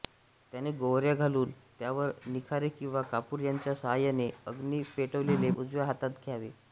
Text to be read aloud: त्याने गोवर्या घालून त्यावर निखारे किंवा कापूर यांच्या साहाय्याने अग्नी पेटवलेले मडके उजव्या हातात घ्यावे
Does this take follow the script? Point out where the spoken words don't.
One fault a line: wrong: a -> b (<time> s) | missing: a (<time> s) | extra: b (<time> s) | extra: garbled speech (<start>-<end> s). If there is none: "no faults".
missing: मडके (5.5 s)